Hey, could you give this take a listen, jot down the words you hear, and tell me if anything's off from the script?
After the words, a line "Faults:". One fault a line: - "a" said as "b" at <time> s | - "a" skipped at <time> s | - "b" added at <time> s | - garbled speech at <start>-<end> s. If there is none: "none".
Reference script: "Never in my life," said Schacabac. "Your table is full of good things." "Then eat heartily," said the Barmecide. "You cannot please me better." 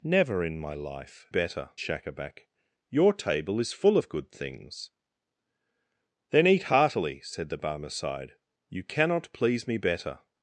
"Never in my life," better Schacabac. "Your table is full of good things." "Then eat heartily," said the Barmecide. "You cannot please me better."
Faults:
- "said" said as "better" at 1.3 s